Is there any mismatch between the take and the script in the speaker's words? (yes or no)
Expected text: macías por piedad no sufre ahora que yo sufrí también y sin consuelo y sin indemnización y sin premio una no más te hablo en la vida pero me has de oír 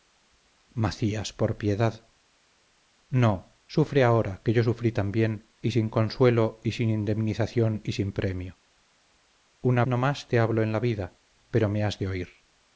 no